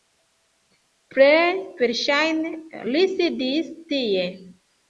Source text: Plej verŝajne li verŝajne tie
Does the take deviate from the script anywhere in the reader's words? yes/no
yes